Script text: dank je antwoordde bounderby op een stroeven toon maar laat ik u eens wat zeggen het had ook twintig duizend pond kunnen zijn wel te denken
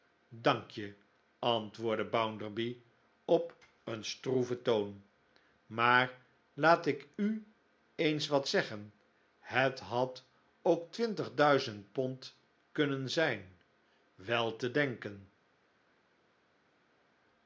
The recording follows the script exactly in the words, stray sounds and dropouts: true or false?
true